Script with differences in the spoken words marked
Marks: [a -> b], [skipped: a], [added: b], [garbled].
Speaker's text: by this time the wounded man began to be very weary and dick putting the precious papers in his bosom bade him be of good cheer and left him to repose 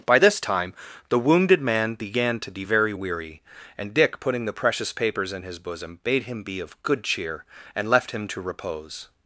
by this time the wounded man began to be very weary and dick putting the precious papers in his bosom bade him be of good cheer and left him to repose